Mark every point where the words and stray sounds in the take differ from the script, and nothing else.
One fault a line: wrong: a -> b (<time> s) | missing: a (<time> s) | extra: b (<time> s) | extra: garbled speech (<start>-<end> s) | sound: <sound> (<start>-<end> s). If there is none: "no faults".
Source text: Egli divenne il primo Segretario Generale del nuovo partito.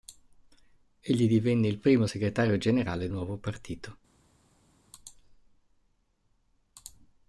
missing: del (3.1 s)